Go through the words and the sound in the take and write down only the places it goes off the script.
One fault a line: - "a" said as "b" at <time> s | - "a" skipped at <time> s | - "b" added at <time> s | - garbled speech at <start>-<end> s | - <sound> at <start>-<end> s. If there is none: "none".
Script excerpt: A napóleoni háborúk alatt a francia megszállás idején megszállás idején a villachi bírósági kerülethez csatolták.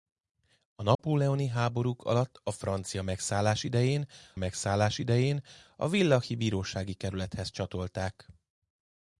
- dropout at 0.9-1.0 s